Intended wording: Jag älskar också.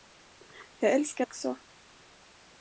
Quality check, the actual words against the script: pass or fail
pass